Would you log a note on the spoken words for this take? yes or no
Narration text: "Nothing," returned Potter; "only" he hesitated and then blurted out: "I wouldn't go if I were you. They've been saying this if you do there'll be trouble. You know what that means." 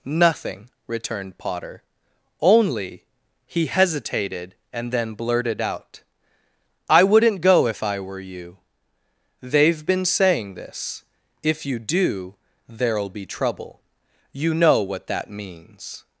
no